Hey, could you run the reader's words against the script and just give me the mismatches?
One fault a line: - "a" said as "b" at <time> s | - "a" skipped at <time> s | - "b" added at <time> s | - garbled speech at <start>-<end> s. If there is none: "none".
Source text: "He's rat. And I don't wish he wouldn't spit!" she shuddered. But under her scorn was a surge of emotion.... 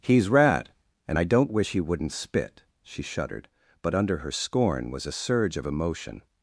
none